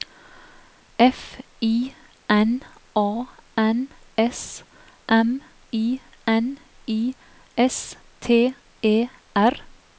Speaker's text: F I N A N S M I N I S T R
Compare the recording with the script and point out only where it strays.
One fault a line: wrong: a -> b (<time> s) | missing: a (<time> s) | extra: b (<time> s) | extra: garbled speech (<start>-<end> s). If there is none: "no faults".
extra: E (8.8 s)